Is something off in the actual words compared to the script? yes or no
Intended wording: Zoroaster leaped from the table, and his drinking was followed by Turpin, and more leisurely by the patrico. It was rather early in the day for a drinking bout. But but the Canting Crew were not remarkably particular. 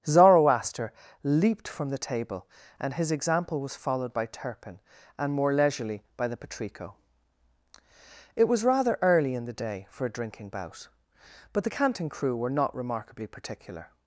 yes